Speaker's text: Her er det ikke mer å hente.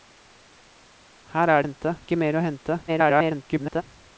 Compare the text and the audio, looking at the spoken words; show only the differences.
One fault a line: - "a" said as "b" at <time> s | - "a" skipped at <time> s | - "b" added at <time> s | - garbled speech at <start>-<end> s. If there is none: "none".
- "det" said as "hente" at 1.6 s
- garbled speech at 2.9-3.8 s